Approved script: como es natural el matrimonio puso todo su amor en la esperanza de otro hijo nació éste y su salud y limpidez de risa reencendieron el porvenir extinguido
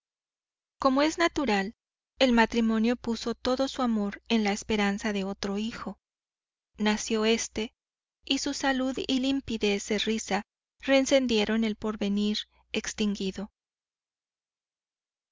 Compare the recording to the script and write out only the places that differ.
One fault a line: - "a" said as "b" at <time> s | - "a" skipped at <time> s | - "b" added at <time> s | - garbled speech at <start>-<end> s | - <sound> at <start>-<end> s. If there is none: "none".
none